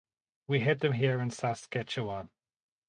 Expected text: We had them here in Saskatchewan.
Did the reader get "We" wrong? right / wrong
right